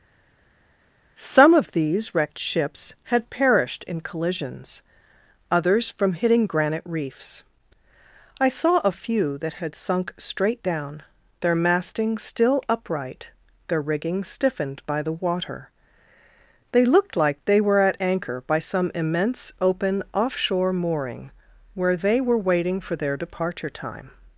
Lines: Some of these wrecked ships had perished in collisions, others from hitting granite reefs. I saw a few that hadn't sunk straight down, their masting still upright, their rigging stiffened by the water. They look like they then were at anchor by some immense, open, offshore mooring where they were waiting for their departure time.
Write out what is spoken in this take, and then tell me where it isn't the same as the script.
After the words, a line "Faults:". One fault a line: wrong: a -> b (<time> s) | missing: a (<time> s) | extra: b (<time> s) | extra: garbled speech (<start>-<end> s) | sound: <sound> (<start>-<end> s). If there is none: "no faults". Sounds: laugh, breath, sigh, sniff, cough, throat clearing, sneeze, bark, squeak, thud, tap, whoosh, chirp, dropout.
Some of these wrecked ships had perished in collisions, others from hitting granite reefs. I saw a few that had sunk straight down, their masting still upright, their rigging stiffened by the water. They looked like they were at anchor by some immense, open, offshore mooring where they were waiting for their departure time.
Faults:
wrong: hadn't -> had (9.5 s)
wrong: look -> looked (16.8 s)
missing: then (17.6 s)